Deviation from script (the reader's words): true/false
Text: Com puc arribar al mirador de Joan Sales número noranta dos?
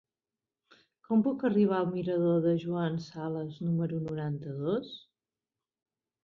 false